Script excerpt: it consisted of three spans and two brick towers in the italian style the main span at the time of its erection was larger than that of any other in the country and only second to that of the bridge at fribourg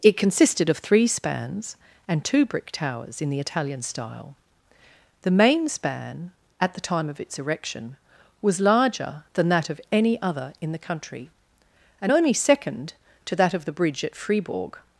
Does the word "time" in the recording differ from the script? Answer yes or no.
no